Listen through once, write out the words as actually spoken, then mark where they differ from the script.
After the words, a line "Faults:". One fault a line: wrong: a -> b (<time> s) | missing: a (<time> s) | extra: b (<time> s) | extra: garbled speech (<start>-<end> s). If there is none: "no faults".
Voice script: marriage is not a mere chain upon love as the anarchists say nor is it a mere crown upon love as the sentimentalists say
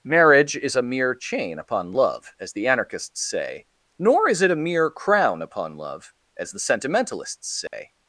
marriage is a mere chain upon love as the anarchists say nor is it a mere crown upon love as the sentimentalists say
Faults:
missing: not (0.8 s)